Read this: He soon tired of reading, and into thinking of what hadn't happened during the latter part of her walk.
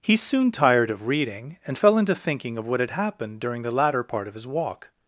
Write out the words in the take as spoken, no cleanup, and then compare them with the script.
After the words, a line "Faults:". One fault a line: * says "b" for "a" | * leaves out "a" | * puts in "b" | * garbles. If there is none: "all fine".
He soon tired of reading, and fell into thinking of what had happened during the latter part of his walk.
Faults:
* puts in "fell"
* says "had" for "hadn't"
* says "his" for "her"